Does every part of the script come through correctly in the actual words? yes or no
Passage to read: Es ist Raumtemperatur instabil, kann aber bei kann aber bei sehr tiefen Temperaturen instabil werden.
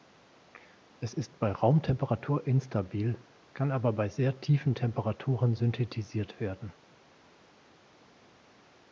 no